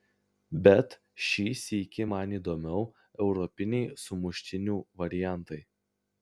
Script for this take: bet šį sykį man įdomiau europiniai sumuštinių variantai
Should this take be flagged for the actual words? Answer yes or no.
no